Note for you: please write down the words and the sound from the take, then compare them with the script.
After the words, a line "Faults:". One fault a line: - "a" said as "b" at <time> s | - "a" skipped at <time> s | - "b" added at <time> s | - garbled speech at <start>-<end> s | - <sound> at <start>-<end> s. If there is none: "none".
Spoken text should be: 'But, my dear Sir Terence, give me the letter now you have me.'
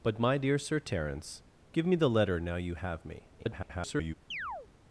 'But, my dear Sir Terence, give me the letter now you have me.' [garbled]
Faults:
- garbled speech at 3.4-4.1 s
- chirp at 4.3-4.7 s